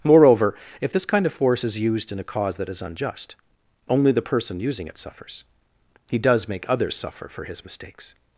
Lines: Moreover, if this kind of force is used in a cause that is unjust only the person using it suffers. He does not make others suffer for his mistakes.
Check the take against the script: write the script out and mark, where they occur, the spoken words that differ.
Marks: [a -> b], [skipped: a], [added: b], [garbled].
Moreover, if this kind of force is used in a cause that is unjust only the person using it suffers. He does [skipped: not] make others suffer for his mistakes.